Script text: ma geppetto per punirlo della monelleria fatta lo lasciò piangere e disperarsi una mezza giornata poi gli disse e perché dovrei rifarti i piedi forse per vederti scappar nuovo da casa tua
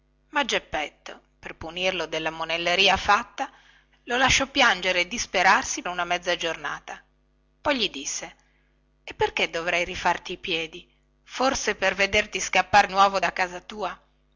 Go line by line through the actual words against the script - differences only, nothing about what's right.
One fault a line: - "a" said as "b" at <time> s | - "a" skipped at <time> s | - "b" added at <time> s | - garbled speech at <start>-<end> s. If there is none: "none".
none